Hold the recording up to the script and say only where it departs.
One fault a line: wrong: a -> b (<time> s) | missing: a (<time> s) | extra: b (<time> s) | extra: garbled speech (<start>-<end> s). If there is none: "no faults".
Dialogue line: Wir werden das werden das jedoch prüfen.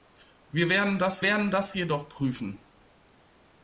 no faults